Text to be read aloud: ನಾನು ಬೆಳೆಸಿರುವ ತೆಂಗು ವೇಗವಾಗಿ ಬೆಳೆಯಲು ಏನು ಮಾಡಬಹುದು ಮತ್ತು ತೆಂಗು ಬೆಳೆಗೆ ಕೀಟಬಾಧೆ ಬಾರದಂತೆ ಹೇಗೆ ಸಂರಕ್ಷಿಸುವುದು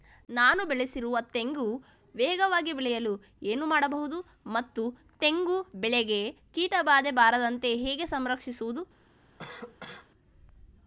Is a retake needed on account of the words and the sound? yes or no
yes